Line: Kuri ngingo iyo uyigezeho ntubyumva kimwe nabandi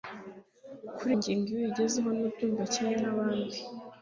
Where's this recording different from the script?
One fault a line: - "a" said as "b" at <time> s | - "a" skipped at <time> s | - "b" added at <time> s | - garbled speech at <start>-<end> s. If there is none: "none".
none